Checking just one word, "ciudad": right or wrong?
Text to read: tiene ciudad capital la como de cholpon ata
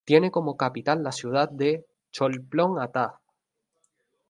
wrong